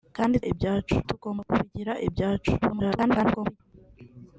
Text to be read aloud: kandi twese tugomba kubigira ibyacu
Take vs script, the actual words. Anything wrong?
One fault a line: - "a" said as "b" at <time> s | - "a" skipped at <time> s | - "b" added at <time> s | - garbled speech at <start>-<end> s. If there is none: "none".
- "twese" said as "ibyacu" at 0.5 s
- garbled speech at 2.6-3.6 s